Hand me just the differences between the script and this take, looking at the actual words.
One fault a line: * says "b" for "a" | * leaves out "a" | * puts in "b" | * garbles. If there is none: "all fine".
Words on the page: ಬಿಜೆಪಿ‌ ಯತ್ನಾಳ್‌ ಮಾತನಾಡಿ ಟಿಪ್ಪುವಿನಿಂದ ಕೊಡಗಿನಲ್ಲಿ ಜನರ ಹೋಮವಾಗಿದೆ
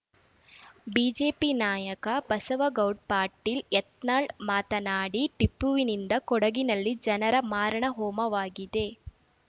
* puts in "ನಾಯಕ ಬಸವಗೌಡ್ ಪಾಟೀಲ್"
* puts in "ಮಾರಣ"